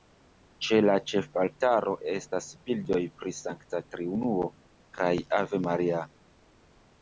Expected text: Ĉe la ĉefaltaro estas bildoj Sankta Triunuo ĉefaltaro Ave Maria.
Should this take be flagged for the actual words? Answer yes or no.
yes